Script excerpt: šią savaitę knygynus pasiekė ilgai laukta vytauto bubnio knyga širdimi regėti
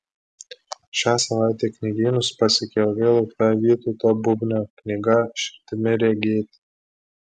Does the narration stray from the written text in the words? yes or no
no